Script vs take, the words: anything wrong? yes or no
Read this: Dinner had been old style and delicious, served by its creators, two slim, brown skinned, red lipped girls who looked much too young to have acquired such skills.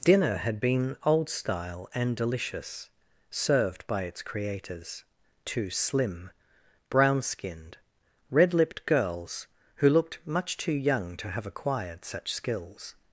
no